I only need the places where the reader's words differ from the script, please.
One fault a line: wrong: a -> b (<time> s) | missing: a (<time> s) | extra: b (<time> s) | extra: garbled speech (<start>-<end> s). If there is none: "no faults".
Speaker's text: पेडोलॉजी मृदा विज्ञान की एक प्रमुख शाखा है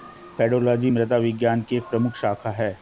no faults